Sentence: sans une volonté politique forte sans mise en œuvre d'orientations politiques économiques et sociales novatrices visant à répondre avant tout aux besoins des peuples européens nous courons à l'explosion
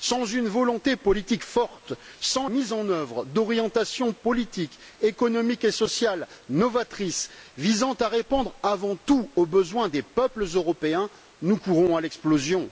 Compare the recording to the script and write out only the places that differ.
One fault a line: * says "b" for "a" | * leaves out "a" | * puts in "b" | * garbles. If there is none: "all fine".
all fine